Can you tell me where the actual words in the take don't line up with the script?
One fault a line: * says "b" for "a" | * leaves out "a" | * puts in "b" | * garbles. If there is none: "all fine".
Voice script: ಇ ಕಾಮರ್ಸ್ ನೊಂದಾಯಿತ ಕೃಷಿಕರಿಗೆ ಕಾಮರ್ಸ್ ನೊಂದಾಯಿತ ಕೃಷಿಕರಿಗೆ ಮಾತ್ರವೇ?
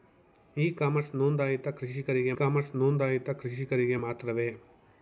all fine